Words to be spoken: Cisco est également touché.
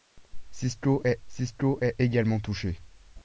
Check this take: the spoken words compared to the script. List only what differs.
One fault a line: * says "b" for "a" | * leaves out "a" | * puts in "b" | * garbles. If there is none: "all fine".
* puts in "cisco est"